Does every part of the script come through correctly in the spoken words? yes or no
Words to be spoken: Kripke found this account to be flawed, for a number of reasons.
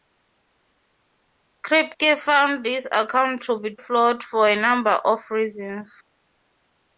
yes